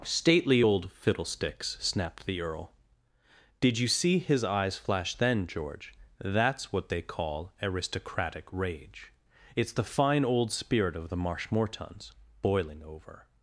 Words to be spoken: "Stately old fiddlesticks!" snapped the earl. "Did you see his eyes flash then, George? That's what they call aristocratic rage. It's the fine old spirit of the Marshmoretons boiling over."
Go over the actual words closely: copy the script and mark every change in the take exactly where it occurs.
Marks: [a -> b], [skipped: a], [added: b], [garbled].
"Stately old fiddlesticks!" snapped the earl. "Did you see his eyes flash then, George? That's what they call aristocratic rage. It's the fine old spirit of the Marshmoretons boiling over."